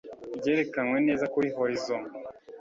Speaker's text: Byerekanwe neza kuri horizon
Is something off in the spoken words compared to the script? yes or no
no